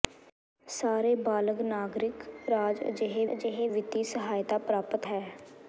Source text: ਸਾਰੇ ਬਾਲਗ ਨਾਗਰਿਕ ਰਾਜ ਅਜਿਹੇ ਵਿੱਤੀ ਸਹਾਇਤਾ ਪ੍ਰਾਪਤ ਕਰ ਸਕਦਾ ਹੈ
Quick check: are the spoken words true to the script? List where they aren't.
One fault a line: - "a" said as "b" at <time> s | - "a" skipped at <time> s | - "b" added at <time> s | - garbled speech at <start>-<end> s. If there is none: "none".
- "ਅਜਿਹੇ" added at 3.3 s
- "ਕਰ ਸਕਦਾ" skipped at 5.1 s